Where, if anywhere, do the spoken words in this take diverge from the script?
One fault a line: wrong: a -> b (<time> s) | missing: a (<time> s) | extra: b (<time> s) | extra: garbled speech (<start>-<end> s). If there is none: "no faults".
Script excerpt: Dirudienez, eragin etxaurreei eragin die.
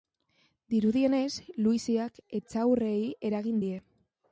wrong: eragin -> luiziak (1.7 s)